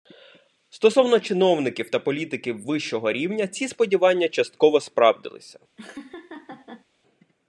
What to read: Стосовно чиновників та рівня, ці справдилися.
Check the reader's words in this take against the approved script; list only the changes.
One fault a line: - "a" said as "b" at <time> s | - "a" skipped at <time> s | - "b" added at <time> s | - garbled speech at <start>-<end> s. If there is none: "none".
- "політиків вищого" added at 2.0 s
- "сподівання частково" added at 3.7 s